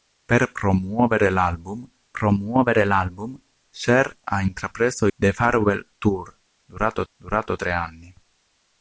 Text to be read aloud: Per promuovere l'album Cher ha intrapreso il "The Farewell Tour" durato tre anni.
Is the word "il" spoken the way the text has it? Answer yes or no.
no